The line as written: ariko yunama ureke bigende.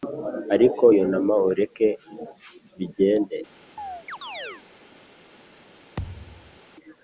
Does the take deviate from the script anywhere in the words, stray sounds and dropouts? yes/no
yes